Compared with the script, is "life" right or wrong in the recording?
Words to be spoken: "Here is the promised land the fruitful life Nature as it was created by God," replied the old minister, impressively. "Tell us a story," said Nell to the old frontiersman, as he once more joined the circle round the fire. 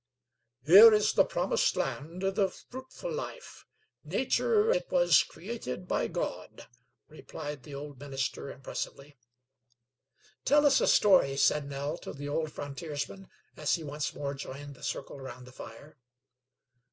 right